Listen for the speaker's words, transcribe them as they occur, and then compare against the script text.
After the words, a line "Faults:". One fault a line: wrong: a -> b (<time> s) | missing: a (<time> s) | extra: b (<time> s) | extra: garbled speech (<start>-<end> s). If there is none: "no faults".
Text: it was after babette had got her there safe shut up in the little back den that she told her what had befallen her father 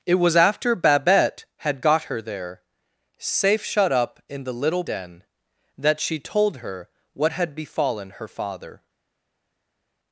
it was after babette had got her there safe shut up in the little den that she told her what had befallen her father
Faults:
missing: back (4.8 s)